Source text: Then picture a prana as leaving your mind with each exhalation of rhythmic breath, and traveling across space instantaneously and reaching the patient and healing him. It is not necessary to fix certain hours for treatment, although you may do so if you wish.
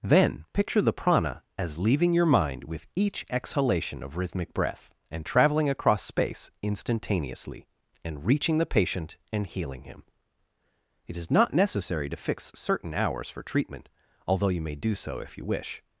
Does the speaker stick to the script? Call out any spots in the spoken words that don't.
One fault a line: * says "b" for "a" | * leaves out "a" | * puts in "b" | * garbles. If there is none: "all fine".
* says "the" for "a"